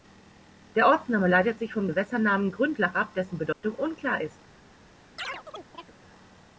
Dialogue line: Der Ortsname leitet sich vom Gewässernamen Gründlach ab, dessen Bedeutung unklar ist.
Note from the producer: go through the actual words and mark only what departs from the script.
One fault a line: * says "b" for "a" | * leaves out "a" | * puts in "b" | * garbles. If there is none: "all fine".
all fine